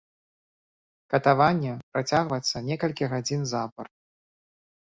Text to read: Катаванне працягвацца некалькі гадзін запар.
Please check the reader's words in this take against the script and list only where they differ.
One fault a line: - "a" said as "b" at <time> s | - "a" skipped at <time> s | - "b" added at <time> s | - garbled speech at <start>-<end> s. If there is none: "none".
none